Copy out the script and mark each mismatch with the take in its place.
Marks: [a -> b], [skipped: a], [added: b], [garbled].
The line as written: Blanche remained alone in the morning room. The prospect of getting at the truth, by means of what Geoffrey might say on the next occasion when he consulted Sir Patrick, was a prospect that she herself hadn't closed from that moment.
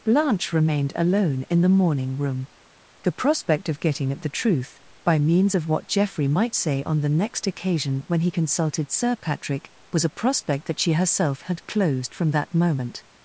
Blanche remained alone in the morning room. The prospect of getting at the truth, by means of what Geoffrey might say on the next occasion when he consulted Sir Patrick, was a prospect that she herself [hadn't -> had] closed from that moment.